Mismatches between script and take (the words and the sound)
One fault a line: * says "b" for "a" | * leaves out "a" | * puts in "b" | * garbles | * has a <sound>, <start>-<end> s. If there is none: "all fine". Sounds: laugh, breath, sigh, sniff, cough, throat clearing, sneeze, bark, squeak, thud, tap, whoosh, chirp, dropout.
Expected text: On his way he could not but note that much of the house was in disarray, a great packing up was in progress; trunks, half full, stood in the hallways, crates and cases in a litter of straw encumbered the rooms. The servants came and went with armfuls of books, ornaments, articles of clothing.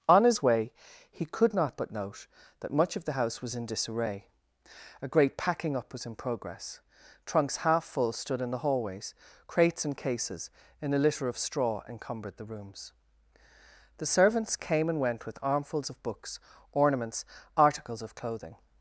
all fine